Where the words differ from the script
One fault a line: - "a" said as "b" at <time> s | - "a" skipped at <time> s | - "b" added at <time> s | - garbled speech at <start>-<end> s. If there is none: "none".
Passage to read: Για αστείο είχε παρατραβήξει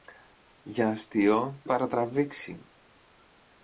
- "είχε" skipped at 1.6 s